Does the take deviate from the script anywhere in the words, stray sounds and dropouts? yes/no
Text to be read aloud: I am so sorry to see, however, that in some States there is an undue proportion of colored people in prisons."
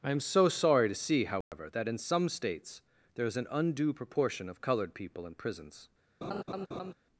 yes